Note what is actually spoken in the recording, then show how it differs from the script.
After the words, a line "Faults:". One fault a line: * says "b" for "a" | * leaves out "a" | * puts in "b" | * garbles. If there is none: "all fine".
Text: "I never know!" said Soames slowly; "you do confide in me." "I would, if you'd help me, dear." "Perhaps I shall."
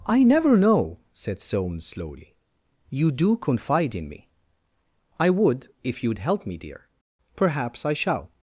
"I never know!" said Soames slowly; "you do confide in me." "I would, if you'd help me, dear." "Perhaps I shall."
Faults:
all fine